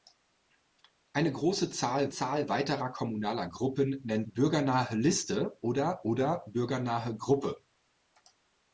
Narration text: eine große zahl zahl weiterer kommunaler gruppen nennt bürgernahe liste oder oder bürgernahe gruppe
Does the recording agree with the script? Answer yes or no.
yes